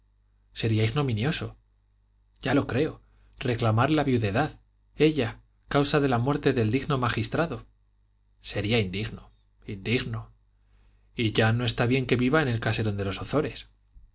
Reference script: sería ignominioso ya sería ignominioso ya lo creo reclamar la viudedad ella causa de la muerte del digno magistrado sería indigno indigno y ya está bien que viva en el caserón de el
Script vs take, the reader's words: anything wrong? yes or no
yes